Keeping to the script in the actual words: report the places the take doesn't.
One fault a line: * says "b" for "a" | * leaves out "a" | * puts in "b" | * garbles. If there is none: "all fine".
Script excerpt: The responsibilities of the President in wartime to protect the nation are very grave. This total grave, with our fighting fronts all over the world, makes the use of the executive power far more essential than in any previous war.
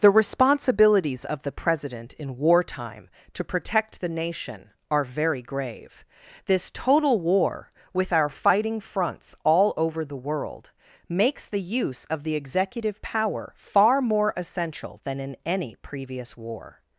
* says "war" for "grave"